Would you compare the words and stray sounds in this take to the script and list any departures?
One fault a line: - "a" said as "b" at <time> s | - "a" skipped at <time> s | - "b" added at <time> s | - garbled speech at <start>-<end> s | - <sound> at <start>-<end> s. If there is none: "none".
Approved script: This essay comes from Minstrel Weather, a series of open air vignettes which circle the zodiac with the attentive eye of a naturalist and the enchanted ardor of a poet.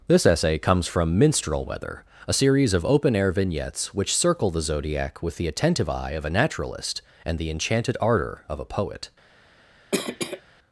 - cough at 9.9-10.4 s